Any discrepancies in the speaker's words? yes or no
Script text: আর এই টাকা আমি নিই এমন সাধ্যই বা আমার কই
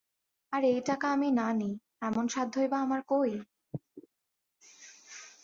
yes